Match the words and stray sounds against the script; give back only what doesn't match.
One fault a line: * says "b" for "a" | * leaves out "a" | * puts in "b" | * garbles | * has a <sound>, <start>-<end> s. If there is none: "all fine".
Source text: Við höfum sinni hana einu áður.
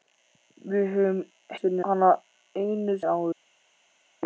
all fine